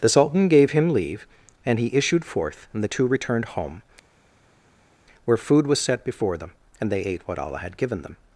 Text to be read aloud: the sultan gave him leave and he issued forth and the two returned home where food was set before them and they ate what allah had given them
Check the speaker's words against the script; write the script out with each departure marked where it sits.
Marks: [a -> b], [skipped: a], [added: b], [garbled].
the sultan gave him leave and he issued forth and the two returned home where food was set before them and they ate what allah had given them